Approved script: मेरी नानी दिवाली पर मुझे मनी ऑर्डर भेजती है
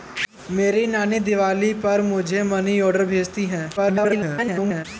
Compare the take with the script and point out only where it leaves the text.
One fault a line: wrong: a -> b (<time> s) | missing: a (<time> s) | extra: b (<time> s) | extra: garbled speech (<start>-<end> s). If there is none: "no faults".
extra: garbled speech (3.8-4.9 s)